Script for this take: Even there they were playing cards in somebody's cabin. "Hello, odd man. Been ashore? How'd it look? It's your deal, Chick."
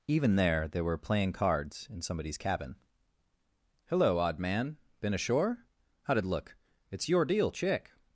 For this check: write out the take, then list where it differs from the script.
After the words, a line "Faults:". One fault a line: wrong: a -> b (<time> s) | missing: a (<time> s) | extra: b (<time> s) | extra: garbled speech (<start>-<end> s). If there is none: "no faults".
Even there they were playing cards in somebody's cabin. "Hello, odd man. Been ashore? How'd it look? It's your deal, Chick."
Faults:
no faults